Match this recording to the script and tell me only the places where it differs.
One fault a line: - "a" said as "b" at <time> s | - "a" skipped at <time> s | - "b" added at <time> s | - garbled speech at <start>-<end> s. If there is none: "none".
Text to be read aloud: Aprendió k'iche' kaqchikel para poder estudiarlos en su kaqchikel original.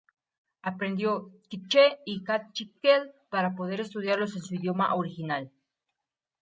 - "y" added at 2.0 s
- "kaqchikel" said as "idioma" at 4.5 s